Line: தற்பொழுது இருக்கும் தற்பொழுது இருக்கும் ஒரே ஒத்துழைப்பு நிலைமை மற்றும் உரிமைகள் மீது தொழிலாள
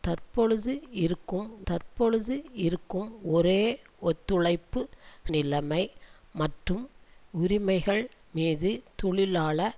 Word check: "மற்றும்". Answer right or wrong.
right